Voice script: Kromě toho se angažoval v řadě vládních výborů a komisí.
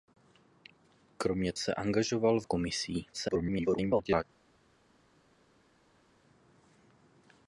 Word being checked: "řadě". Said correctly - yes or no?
no